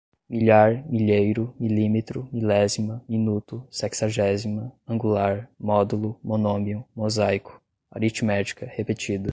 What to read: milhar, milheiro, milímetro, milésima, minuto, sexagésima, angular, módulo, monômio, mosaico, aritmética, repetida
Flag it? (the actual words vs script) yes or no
no